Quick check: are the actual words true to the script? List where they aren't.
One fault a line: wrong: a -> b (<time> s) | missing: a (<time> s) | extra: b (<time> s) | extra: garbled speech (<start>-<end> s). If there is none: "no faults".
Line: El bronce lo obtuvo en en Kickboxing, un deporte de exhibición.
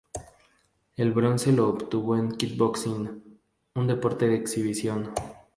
missing: en (2.3 s)